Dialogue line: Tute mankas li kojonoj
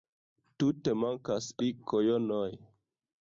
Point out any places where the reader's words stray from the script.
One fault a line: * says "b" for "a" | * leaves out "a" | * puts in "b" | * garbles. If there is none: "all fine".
all fine